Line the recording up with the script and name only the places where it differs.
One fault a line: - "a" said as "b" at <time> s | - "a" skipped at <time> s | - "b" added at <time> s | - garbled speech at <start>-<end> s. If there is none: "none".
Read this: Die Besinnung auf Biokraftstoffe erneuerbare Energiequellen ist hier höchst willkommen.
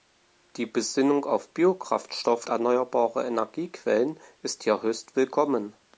none